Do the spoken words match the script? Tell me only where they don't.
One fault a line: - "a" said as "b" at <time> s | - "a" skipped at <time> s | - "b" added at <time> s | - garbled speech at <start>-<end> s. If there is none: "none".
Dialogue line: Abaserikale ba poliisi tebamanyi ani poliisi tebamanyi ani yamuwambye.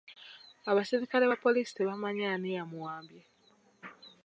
- "poliisi tebamanyi ani" skipped at 2.5 s